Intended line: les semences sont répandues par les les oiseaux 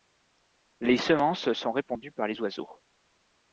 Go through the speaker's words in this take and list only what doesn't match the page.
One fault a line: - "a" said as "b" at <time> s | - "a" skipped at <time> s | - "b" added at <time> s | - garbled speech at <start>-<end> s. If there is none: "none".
- "les" skipped at 2.4 s